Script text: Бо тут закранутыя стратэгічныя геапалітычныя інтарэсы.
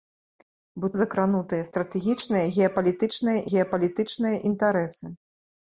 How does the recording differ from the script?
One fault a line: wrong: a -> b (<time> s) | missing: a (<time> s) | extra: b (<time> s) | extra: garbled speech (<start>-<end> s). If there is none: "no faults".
missing: тут (0.9 s)
extra: геапалітычныя (3.5 s)